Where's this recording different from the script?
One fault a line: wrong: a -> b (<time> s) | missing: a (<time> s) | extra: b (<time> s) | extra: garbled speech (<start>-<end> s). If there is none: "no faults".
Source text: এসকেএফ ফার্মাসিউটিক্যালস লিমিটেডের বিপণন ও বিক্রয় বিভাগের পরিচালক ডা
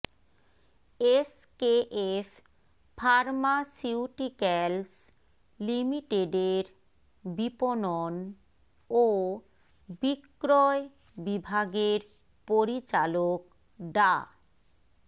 no faults